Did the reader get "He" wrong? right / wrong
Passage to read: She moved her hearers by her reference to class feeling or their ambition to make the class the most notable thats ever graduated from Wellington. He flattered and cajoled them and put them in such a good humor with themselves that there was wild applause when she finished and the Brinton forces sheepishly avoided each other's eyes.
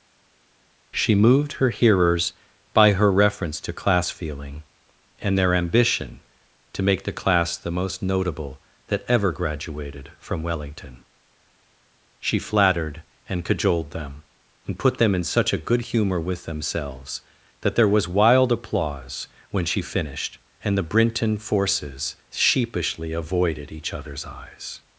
wrong